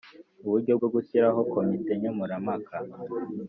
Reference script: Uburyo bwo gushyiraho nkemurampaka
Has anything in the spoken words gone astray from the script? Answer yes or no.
yes